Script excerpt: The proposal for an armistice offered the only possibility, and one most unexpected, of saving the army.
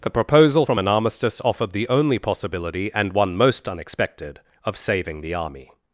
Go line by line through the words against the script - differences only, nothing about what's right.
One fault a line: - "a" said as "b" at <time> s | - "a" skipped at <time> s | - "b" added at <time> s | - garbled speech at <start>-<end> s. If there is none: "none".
- "for" said as "from" at 0.6 s